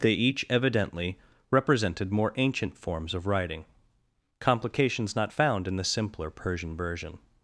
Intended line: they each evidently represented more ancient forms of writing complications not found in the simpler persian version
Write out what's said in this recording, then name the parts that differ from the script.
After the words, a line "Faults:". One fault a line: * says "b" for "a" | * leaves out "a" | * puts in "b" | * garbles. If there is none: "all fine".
they each evidently represented more ancient forms of writing complications not found in the simpler persian version
Faults:
all fine